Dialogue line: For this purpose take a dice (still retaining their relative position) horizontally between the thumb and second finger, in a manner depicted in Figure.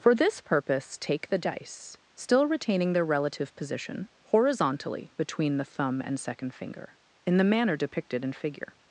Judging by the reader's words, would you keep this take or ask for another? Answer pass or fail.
fail